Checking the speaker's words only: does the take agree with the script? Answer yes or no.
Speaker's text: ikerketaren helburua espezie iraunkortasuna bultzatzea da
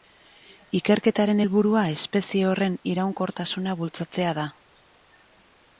no